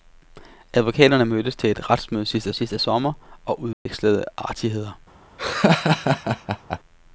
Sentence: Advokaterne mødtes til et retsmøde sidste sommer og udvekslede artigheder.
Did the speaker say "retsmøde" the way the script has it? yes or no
yes